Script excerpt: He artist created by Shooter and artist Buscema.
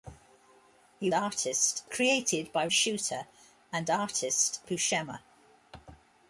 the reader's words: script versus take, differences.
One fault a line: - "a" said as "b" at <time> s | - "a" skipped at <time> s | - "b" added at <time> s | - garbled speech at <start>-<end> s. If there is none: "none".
none